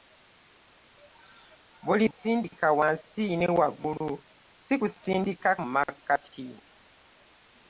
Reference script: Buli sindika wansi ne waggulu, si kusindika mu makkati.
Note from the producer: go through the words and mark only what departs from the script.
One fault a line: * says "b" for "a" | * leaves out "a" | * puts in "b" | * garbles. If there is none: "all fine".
all fine